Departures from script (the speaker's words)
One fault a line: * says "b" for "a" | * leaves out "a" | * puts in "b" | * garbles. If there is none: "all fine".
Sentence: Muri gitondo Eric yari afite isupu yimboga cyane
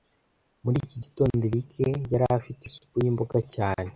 * puts in "iki"